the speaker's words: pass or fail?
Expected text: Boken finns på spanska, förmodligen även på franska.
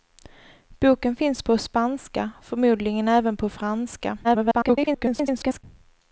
fail